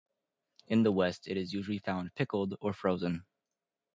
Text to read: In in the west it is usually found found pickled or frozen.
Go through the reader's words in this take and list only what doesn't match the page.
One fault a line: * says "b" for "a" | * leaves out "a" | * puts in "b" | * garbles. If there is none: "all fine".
* leaves out "in"
* leaves out "found"